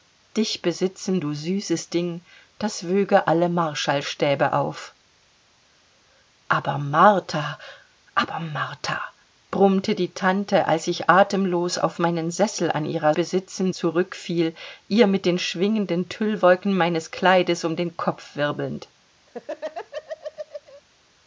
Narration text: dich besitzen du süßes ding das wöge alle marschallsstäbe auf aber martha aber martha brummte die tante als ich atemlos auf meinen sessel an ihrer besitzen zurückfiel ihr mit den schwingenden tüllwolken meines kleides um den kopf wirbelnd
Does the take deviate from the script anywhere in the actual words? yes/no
no